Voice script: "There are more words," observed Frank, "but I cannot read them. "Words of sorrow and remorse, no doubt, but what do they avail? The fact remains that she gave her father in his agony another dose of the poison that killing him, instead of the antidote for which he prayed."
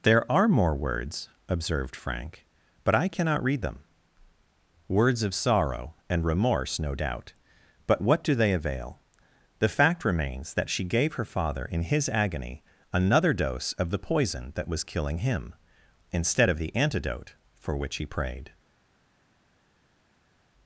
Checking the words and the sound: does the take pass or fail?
fail